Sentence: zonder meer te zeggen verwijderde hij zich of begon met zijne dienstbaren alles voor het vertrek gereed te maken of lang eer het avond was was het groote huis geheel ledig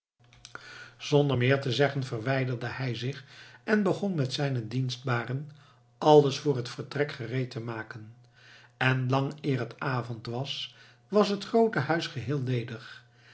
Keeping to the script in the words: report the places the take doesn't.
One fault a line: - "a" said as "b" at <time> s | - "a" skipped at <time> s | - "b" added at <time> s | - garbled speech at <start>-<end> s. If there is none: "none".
- "of" said as "en" at 3.6 s
- "of" said as "en" at 8.8 s